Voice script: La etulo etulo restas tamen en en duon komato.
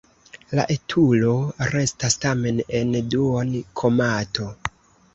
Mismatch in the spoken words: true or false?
true